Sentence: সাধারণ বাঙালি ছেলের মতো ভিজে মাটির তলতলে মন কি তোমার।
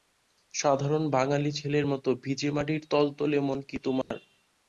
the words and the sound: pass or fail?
fail